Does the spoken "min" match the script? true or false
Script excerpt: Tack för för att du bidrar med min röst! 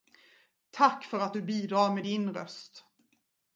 false